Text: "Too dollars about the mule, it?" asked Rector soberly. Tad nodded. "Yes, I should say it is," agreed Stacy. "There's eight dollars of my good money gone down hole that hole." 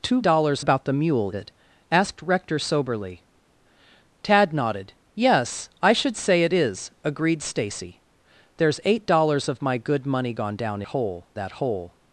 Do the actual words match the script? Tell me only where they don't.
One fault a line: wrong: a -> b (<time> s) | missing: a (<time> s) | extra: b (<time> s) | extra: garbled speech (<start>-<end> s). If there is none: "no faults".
no faults